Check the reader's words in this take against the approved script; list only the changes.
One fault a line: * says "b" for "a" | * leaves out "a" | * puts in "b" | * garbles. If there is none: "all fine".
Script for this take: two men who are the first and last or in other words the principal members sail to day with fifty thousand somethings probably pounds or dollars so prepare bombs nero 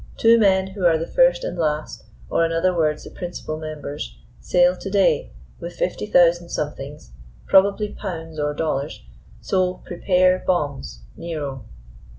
all fine